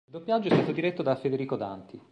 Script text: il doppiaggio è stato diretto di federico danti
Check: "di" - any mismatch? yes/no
yes